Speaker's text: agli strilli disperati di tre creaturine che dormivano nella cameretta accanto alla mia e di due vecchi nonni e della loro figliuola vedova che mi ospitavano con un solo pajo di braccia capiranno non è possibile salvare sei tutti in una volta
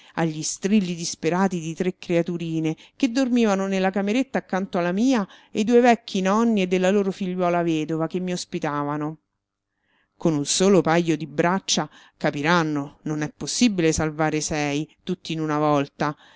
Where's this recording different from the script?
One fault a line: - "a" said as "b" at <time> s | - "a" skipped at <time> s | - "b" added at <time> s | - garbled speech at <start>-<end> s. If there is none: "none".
- "di" skipped at 5.6 s